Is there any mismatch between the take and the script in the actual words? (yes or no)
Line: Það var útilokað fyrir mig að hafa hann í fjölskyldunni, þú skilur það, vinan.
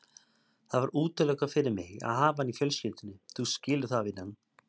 no